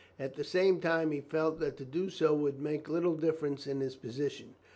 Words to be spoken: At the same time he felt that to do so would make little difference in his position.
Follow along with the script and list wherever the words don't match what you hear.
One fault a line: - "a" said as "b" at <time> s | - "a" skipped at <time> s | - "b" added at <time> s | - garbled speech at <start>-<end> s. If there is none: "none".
none